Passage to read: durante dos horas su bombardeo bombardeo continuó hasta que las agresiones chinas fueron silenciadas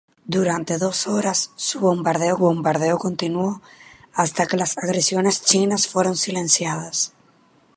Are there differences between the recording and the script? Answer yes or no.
no